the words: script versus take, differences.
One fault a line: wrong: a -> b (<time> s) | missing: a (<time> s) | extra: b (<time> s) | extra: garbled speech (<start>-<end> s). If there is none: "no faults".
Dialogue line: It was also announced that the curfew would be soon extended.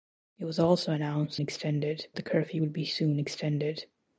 wrong: that -> extended (1.4 s)